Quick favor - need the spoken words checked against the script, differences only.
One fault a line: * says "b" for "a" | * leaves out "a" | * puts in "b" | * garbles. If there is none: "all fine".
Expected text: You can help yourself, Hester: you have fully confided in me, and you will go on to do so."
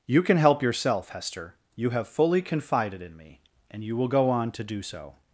all fine